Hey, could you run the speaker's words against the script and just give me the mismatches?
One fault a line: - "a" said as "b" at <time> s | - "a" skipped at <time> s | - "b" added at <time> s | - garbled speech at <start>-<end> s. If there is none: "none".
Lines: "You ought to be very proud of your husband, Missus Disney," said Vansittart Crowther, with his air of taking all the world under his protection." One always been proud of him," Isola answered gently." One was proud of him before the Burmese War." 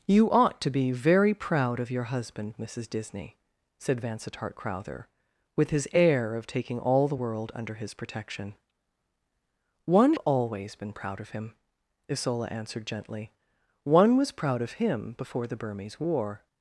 none